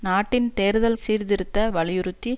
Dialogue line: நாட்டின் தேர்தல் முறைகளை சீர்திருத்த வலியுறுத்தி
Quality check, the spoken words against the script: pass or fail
fail